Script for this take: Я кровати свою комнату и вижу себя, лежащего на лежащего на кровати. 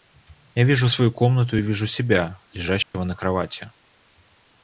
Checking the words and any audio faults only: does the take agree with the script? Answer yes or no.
no